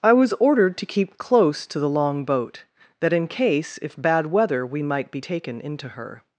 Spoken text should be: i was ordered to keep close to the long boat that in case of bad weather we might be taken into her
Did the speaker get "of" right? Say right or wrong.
wrong